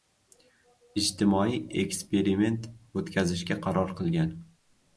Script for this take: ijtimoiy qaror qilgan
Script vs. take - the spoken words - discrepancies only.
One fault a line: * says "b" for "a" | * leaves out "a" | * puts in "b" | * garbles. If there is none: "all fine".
* puts in "eksperiment o‘tkazishga"